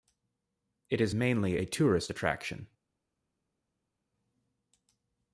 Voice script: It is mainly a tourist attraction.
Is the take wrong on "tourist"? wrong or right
right